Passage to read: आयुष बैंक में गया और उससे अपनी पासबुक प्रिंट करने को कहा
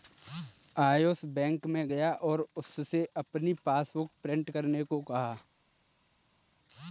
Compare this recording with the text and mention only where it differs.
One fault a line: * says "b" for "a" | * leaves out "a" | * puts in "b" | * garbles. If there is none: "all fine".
all fine